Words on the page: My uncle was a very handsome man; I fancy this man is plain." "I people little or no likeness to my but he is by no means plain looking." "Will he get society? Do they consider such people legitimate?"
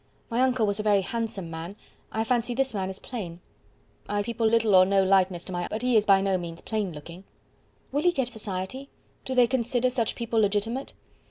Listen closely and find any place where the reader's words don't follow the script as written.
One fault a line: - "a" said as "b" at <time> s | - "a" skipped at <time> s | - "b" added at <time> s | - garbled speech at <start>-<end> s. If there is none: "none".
none